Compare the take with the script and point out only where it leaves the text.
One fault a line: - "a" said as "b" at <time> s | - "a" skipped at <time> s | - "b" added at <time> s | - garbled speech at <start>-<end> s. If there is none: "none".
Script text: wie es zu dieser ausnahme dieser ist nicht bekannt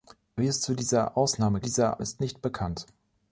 none